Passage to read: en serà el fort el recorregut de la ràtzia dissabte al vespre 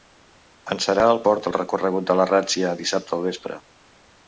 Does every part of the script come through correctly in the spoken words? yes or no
yes